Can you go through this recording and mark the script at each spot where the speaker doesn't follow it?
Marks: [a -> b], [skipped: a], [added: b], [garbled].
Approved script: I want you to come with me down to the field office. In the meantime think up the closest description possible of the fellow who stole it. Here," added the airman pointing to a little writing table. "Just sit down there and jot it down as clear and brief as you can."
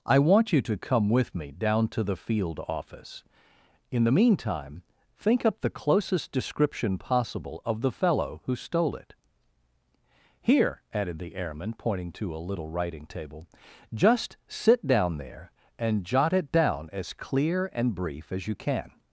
I want you to come with me down to the field office. In the meantime think up the closest description possible of the fellow who stole it. Here," added the airman pointing to a little writing table. "Just sit down there and jot it down as clear and brief as you can."